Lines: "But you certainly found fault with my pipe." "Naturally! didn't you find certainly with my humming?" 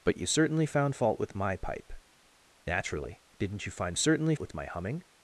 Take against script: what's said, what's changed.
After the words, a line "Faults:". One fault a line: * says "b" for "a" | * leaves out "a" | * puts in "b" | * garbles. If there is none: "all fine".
"But you certainly found fault with my pipe." "Naturally! didn't you find certainly with my humming?"
Faults:
all fine